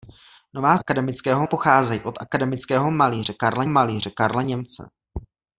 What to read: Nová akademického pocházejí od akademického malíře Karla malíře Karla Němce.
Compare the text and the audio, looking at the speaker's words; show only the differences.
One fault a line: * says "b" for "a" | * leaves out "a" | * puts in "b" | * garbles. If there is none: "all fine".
all fine